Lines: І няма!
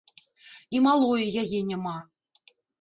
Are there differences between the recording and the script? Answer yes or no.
yes